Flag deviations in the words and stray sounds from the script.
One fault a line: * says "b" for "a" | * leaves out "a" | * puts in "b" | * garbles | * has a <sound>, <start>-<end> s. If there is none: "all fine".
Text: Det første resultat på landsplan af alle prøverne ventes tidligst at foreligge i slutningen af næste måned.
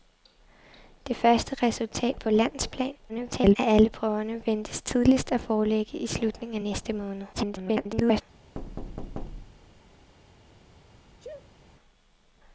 * garbles
* garbles
* has a thud, 8.5-9.8 s
* has a sneeze, 11.2-11.6 s